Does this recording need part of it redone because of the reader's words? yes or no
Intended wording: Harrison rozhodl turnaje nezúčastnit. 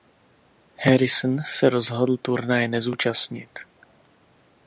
yes